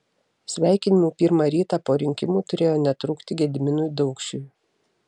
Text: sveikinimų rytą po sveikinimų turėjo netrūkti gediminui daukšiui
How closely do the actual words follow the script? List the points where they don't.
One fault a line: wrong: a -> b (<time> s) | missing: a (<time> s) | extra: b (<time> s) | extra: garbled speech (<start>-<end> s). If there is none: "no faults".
extra: pirmą (1.2 s)
wrong: sveikinimų -> rinkimų (2.0 s)